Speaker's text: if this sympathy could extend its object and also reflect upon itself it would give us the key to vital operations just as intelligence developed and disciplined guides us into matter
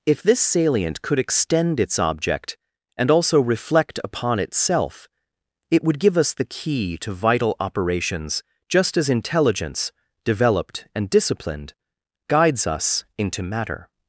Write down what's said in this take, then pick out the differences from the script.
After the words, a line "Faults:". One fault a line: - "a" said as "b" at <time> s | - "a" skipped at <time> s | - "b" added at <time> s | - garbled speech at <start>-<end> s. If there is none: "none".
if this salient could extend its object and also reflect upon itself it would give us the key to vital operations just as intelligence developed and disciplined guides us into matter
Faults:
- "sympathy" said as "salient" at 0.4 s